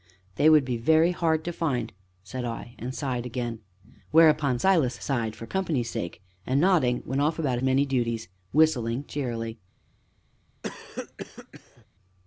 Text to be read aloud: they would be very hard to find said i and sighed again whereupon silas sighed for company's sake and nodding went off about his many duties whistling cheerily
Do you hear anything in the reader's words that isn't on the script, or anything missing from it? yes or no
yes